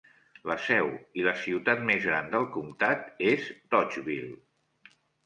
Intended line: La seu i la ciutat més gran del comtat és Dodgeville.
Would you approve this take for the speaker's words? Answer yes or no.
yes